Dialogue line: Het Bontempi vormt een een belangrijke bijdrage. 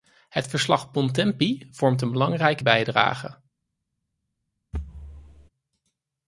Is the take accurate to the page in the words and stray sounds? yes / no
no